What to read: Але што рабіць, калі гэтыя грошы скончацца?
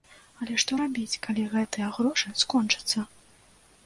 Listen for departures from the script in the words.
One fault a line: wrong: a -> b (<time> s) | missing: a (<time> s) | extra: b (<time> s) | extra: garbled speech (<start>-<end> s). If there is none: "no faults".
no faults